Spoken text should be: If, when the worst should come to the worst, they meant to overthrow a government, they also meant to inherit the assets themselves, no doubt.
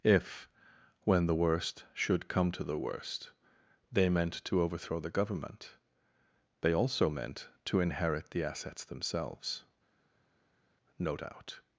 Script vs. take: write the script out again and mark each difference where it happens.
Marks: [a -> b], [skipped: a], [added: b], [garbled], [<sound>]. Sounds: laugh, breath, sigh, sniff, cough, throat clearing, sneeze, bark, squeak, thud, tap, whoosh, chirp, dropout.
If, when the worst should come to the worst, they meant to overthrow [a -> the] government, they also meant to inherit the assets themselves, no doubt.